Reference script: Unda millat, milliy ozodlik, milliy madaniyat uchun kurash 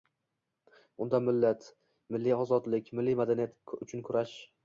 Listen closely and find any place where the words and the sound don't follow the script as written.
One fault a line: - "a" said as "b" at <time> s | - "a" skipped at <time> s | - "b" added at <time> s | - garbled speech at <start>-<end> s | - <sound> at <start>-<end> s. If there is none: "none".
none